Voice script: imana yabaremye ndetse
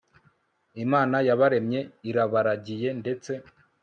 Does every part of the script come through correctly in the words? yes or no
no